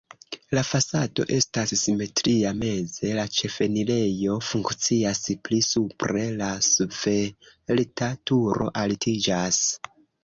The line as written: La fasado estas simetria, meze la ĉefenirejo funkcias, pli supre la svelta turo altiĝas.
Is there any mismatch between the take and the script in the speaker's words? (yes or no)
no